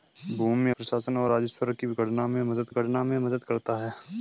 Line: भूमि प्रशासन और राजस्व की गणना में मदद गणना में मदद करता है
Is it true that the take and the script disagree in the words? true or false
false